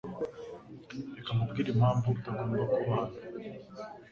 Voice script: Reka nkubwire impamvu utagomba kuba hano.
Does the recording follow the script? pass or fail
pass